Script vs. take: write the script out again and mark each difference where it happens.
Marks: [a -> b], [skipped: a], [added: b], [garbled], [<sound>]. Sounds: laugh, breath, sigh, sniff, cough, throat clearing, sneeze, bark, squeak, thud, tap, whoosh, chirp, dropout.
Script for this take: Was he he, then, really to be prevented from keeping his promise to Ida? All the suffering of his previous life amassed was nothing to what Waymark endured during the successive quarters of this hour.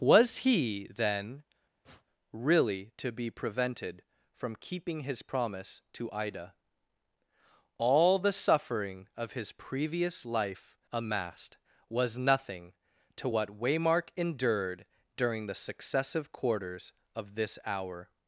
Was he [skipped: he,] then, [sniff] really to be prevented from keeping his promise to Ida? All the suffering of his previous life amassed was nothing to what Waymark endured during the successive quarters of this hour.